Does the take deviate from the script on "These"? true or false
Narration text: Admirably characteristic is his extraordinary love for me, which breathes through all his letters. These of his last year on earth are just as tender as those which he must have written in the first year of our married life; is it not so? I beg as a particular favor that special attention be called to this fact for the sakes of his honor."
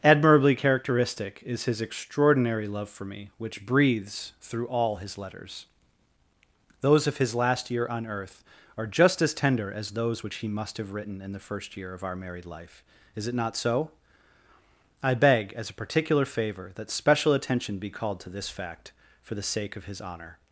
true